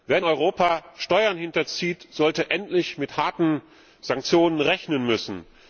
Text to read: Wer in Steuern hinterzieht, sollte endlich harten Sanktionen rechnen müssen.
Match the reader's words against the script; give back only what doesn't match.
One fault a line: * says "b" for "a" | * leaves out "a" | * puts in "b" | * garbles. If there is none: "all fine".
* puts in "Europa"
* puts in "mit"